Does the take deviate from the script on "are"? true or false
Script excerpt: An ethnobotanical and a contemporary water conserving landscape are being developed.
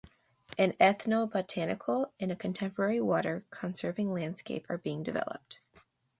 false